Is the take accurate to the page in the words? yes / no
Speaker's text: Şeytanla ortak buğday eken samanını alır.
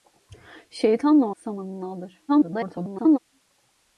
no